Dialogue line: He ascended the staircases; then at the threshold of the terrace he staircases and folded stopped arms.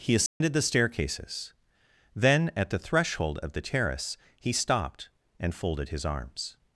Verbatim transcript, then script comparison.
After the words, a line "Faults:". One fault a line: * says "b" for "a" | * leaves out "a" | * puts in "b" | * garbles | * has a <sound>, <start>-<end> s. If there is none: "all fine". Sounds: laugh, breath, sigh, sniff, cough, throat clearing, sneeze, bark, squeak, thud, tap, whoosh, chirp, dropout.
He ascended the staircases; then at the threshold of the terrace he stopped and folded his arms.
Faults:
* has a dropout, 0.3-0.4 s
* says "stopped" for "staircases"
* says "his" for "stopped"